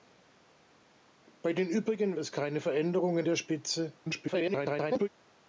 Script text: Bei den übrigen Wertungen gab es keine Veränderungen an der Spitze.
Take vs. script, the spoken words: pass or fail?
fail